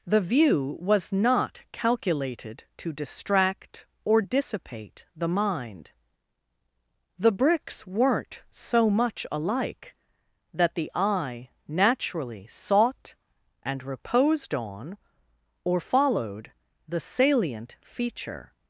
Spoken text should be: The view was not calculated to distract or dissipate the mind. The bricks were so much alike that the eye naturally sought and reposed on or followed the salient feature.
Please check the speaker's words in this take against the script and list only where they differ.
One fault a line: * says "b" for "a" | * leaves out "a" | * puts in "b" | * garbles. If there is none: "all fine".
* says "weren't" for "were"